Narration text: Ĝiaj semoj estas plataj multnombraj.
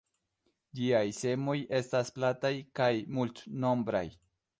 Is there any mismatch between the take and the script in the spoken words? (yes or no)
yes